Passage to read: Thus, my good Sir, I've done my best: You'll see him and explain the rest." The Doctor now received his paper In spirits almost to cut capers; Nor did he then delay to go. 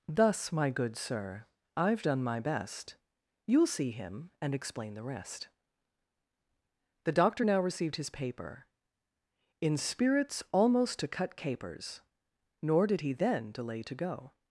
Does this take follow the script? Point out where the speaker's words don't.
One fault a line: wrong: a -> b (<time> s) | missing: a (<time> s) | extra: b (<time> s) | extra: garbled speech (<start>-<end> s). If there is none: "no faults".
no faults